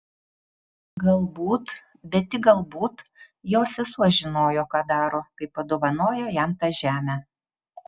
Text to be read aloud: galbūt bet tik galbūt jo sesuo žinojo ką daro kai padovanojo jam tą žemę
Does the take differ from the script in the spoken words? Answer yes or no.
no